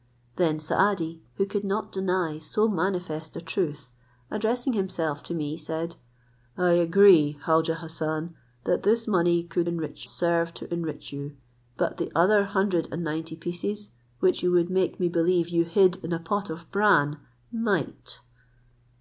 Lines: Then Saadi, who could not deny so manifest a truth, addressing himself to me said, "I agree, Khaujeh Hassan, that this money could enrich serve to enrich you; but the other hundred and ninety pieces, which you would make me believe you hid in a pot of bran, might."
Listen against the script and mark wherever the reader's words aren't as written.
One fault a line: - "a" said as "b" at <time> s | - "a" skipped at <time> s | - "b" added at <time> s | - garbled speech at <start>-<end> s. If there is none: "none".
none